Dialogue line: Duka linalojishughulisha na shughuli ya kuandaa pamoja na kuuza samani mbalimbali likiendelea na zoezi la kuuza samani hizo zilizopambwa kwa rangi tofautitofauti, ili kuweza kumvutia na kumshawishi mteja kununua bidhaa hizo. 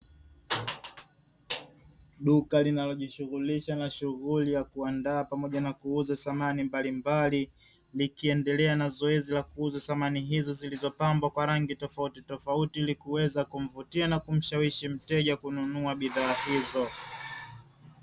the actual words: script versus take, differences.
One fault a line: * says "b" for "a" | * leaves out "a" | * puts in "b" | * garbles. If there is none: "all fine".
all fine